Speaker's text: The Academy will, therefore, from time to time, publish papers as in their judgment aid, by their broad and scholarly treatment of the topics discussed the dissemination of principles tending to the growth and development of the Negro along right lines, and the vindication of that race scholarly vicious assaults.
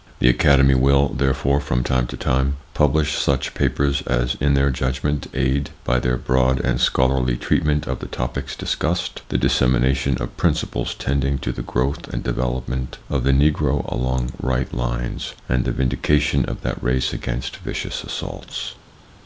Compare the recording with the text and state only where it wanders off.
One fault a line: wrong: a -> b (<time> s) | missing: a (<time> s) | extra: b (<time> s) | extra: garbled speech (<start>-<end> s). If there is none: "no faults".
extra: such (3.2 s)
wrong: scholarly -> against (17.1 s)